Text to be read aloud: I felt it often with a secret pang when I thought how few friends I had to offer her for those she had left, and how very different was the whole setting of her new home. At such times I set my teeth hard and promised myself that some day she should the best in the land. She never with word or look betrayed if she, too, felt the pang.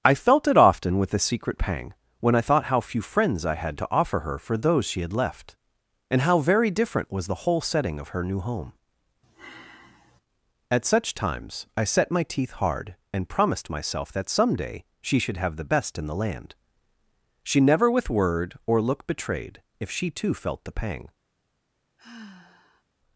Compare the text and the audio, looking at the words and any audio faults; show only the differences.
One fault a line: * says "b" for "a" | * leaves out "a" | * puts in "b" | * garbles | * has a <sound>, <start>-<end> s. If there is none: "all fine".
* has a sigh, 9.2-10.2 s
* puts in "have"
* has a sigh, 22.0-22.8 s